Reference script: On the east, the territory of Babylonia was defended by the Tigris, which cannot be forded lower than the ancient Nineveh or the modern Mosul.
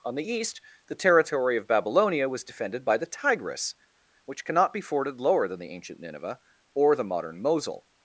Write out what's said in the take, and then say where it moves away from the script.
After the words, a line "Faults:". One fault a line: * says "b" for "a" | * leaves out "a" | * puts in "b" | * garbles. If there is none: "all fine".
On the east, the territory of Babylonia was defended by the Tigris, which cannot be forded lower than the ancient Nineveh or the modern Mosul.
Faults:
all fine